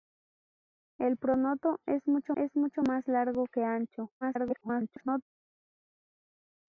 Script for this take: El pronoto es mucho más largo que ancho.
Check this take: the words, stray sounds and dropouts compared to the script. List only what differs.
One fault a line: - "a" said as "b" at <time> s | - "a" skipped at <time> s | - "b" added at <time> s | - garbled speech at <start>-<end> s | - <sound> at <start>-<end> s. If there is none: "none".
- "es mucho" added at 2.3 s
- garbled speech at 4.2-5.2 s